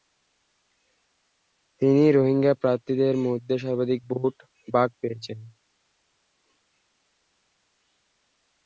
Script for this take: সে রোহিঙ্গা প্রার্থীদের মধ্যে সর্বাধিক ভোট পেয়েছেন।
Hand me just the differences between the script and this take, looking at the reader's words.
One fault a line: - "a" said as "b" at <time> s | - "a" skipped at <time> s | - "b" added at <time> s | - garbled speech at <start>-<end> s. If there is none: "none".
- "সে" said as "তিনি" at 1.8 s
- "ভাগ" added at 4.7 s